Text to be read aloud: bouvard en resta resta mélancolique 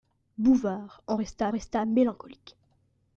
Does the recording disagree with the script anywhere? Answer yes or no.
no